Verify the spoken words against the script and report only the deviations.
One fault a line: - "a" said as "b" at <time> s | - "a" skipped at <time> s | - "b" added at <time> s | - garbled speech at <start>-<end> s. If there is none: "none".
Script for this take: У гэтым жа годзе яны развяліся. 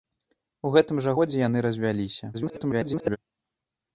- garbled speech at 2.3-3.2 s